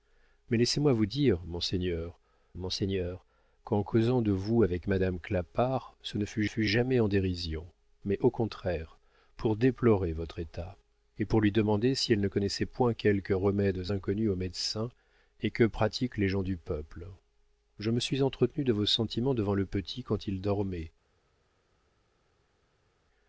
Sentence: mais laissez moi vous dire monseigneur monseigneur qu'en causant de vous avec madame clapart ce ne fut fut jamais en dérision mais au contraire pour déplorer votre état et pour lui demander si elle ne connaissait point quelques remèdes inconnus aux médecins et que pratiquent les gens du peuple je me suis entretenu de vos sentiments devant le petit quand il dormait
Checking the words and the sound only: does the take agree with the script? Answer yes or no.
yes